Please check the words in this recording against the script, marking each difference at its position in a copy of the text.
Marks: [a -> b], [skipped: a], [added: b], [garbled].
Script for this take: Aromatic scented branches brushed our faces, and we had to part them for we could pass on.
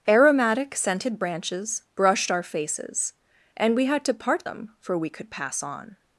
Aromatic scented branches brushed our faces, and we had to part them for we could pass on.